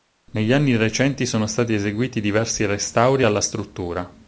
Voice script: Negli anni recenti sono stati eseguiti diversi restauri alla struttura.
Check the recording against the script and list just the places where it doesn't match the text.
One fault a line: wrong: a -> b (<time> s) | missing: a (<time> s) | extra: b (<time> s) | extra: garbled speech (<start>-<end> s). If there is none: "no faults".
no faults